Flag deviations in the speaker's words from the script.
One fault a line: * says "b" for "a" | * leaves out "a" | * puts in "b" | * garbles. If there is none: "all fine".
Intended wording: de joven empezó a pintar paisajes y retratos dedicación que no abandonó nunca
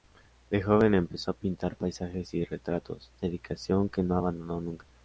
all fine